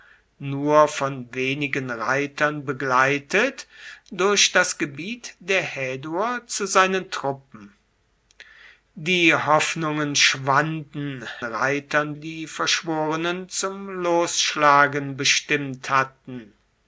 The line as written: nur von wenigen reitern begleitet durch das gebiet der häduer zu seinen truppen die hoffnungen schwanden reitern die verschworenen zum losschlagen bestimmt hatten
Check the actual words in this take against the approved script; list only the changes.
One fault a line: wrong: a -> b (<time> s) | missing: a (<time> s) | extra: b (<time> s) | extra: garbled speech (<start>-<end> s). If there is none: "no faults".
no faults